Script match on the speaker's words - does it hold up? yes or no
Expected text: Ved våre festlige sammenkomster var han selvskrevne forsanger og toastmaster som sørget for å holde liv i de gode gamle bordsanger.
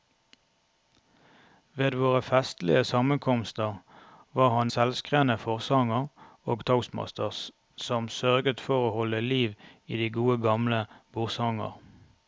yes